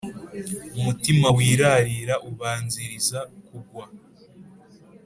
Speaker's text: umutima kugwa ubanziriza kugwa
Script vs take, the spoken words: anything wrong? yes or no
yes